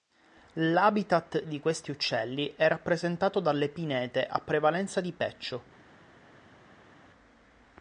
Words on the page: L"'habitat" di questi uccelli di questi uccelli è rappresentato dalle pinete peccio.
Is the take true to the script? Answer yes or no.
no